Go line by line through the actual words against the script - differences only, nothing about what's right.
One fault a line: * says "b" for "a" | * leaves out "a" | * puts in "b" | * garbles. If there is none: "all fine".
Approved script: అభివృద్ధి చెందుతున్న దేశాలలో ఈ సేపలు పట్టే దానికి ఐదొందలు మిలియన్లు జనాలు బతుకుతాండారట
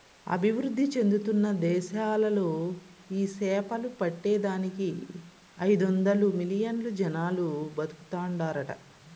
all fine